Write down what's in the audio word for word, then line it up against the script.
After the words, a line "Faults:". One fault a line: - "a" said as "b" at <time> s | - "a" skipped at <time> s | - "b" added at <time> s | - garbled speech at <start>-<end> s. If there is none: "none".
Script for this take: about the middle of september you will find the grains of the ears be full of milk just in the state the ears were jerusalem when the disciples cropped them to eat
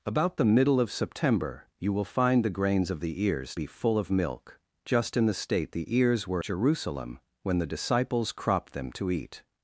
about the middle of september you will find the grains of the ears be full of milk just in the state the ears were jerusalem when the disciples cropped them to eat
Faults:
none